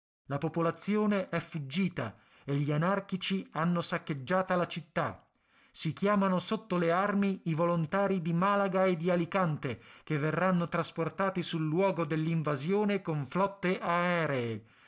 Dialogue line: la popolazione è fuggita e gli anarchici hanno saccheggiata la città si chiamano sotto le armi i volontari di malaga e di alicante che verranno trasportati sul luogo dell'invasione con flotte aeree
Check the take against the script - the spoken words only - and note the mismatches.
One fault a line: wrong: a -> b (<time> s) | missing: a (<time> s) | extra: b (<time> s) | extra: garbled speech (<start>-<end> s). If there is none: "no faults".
no faults